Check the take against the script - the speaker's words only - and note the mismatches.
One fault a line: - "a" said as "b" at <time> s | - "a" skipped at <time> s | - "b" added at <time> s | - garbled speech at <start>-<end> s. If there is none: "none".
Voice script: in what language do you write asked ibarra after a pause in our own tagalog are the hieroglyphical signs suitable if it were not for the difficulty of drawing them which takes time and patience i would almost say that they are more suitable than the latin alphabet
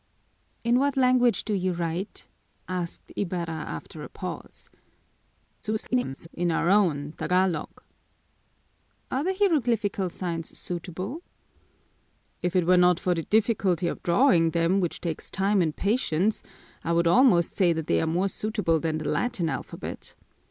- garbled speech at 5.6-6.3 s